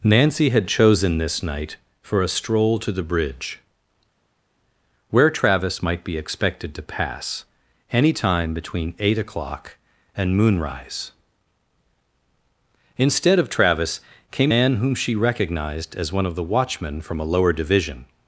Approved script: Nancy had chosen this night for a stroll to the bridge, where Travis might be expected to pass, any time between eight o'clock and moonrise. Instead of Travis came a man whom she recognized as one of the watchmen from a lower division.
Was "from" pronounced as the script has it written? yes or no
yes